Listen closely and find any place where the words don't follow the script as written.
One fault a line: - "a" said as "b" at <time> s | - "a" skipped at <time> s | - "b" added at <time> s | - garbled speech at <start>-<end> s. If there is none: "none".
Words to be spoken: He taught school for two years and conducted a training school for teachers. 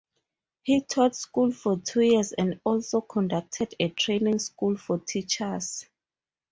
- "also" added at 2.6 s